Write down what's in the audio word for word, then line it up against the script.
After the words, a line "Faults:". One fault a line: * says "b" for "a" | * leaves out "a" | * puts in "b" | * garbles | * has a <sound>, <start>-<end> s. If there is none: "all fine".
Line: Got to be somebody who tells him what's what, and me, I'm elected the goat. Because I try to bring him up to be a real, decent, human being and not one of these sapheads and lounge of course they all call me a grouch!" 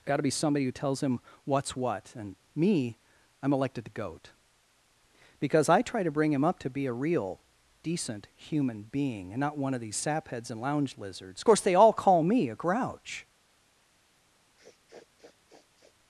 Got to be somebody who tells him what's what, and me, I'm elected the goat. Because I try to bring him up to be a real, decent, human being and not one of these sapheads and lounge lizards, of course they all call me a grouch!"
Faults:
* puts in "lizards"
* has a sniff, 14.6-16.0 s